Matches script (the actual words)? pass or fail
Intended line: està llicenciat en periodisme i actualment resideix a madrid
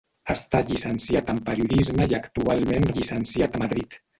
fail